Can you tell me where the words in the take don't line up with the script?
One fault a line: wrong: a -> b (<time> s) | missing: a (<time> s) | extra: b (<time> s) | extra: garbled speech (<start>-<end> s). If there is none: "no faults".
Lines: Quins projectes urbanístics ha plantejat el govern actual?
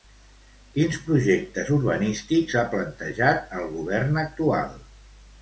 no faults